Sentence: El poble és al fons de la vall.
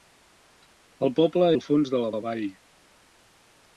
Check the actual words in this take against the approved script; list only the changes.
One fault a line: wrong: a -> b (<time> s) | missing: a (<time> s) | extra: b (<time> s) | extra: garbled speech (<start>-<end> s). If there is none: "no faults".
missing: és (1.5 s)
extra: la (2.1 s)